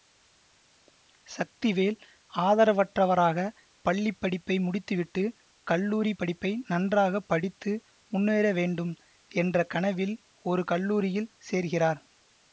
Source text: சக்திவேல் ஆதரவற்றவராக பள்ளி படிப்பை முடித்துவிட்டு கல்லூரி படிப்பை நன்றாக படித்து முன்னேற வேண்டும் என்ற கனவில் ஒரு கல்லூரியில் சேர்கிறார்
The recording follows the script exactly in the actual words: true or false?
true